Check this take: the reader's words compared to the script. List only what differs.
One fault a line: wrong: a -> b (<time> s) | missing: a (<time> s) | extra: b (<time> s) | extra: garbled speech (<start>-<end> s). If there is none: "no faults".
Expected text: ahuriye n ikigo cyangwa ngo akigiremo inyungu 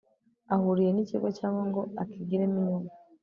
no faults